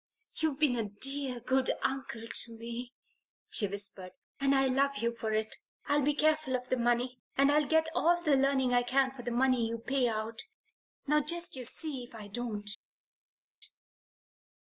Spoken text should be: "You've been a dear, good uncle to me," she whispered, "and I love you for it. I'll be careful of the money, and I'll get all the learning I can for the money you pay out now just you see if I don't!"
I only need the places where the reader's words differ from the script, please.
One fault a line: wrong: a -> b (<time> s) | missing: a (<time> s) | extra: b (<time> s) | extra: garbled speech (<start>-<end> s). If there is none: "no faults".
no faults